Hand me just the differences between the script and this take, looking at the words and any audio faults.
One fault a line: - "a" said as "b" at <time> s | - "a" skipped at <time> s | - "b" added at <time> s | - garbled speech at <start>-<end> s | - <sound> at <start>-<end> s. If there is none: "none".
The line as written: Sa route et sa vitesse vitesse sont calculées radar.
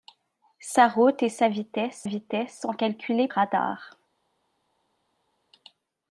none